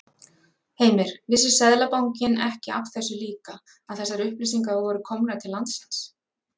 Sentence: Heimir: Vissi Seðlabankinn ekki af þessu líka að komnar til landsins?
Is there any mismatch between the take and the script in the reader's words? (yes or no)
yes